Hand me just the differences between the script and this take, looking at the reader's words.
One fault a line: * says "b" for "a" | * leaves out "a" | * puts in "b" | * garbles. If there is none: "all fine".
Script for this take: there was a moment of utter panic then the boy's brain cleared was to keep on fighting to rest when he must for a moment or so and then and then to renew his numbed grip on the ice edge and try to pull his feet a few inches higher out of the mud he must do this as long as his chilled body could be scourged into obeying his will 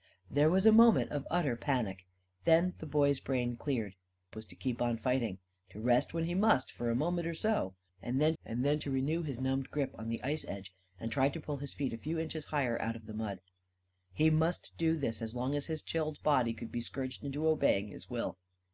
all fine